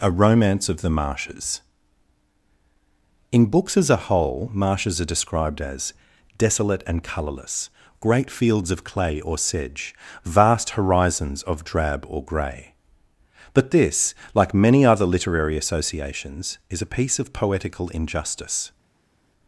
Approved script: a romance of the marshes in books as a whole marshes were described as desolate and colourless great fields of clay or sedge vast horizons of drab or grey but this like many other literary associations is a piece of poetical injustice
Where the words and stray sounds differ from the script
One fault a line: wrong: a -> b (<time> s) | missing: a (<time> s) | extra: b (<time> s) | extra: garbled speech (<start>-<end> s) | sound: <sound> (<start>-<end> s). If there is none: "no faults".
wrong: were -> are (5.0 s)